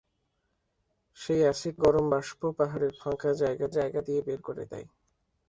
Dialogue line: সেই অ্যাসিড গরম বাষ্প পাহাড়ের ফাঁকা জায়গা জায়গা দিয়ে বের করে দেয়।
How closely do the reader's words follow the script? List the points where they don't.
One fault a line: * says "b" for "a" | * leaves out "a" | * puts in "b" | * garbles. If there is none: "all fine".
all fine